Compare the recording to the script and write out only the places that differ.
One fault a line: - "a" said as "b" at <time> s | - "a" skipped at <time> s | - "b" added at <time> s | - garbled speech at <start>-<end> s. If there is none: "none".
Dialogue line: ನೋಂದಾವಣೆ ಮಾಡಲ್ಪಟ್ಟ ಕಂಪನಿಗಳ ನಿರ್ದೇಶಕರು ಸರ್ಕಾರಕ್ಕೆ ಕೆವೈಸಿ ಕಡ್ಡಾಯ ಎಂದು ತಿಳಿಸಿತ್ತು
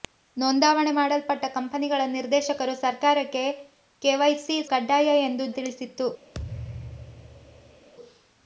none